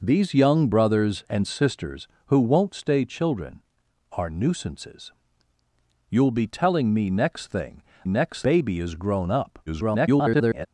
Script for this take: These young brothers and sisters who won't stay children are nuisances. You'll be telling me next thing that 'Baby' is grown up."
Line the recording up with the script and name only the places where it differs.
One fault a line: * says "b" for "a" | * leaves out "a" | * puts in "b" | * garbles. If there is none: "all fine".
* says "next" for "that"
* garbles